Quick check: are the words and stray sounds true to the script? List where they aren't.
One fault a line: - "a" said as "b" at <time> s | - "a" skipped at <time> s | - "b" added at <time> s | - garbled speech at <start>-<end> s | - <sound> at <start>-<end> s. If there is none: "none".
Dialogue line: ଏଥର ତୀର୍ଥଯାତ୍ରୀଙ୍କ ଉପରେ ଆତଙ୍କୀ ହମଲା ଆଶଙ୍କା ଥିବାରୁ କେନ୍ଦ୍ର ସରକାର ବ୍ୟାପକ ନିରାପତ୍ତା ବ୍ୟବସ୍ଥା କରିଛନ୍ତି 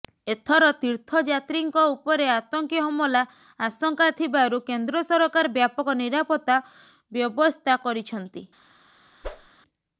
- whoosh at 9.2-9.5 s